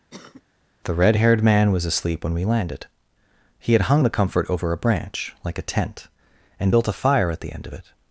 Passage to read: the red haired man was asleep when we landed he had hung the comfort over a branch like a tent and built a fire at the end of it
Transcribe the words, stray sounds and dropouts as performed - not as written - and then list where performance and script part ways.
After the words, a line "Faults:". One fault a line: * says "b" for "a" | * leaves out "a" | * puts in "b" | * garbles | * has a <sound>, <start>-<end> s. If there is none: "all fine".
the red haired man was asleep when we landed he had hung the comfort over a branch like a tent and built a fire at the end of it
Faults:
* has a cough, 0.1-0.4 s